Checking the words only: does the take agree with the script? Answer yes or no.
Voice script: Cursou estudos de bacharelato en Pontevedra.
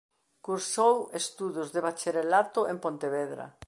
yes